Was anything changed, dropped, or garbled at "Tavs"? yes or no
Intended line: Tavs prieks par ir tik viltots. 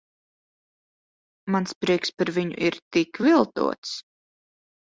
yes